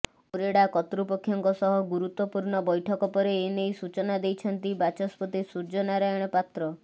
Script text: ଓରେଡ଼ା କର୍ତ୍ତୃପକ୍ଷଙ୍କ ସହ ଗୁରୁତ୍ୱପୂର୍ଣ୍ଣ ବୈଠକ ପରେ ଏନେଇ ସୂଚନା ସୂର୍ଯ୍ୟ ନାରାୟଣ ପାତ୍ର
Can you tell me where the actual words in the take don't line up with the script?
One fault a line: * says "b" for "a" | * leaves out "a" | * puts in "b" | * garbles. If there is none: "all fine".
* puts in "ଦେଇଛନ୍ତି ବାଚସ୍ପତି"